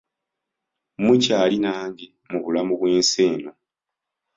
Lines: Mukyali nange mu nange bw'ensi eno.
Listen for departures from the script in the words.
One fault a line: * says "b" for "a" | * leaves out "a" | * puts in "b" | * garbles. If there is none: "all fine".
* says "bulamu" for "nange"